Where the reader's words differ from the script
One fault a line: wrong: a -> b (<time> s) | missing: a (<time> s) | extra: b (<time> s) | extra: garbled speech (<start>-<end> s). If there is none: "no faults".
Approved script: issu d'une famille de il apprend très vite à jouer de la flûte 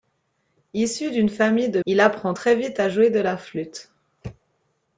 no faults